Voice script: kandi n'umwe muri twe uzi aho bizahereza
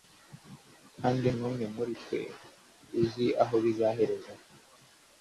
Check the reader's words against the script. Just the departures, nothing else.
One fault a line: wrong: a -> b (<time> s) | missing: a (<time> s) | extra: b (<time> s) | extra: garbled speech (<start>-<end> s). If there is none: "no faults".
no faults